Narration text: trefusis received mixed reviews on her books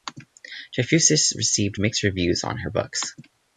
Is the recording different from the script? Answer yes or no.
no